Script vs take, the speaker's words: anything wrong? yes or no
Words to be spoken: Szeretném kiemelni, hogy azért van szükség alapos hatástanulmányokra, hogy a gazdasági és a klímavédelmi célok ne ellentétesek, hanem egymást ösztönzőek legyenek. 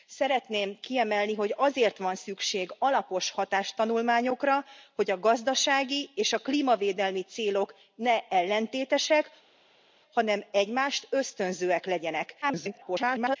yes